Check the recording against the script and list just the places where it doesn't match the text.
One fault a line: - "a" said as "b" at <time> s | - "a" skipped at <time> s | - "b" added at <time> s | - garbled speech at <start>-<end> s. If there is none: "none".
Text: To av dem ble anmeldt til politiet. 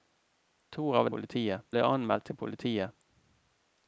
- "dem" said as "politiet" at 1.1 s